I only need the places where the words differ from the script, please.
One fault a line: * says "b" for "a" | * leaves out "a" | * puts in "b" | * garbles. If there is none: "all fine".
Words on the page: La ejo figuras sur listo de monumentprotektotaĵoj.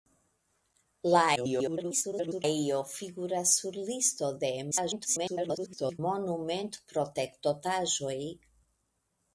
* garbles
* garbles